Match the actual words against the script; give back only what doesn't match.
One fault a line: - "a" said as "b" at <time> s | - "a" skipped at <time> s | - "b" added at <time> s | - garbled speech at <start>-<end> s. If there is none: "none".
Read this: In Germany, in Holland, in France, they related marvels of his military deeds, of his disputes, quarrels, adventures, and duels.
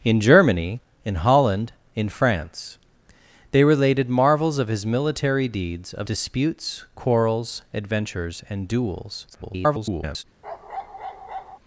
- "his" skipped at 6.1 s
- garbled speech at 9.3-10.2 s